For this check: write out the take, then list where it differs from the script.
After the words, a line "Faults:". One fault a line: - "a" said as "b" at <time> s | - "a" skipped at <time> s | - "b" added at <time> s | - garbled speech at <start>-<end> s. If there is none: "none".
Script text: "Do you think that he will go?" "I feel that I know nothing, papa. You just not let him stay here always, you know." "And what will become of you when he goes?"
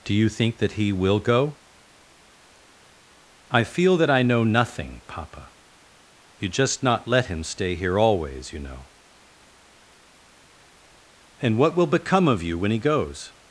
"Do you think that he will go?" "I feel that I know nothing, papa. You just not let him stay here always, you know." "And what will become of you when he goes?"
Faults:
none